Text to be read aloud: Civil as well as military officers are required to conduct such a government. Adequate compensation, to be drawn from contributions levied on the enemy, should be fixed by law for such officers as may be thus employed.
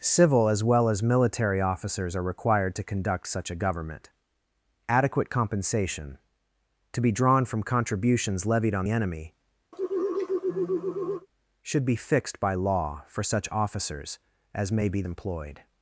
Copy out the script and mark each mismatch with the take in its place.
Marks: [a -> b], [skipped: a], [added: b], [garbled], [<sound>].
Civil as well as military officers are required to conduct such a government. Adequate compensation, to be drawn from contributions levied on [skipped: the] enemy, [sigh] should be fixed by law for such officers as may be [skipped: thus] employed.